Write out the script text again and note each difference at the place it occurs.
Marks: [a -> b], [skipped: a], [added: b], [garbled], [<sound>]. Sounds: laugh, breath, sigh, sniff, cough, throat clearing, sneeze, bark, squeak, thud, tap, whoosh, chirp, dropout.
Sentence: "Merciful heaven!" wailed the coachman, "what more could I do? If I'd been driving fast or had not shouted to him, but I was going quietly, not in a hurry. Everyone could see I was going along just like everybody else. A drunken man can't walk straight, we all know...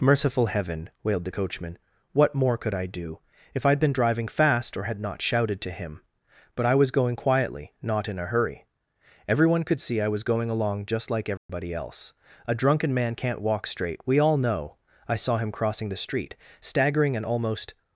"Merciful heaven!" wailed the coachman, "what more could I do? If I'd been driving fast or had not shouted to him, but I was going quietly, not in a hurry. Everyone could see I was going along just like everybody [dropout] else. A drunken man can't walk straight, we all know... [added: I saw him crossing the street staggering and almost]